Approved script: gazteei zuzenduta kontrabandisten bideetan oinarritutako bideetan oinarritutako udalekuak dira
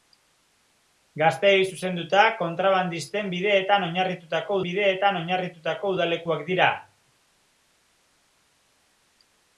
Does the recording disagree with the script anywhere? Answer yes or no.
no